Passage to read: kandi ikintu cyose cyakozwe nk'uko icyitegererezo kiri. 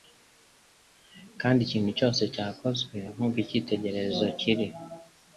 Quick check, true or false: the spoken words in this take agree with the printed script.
true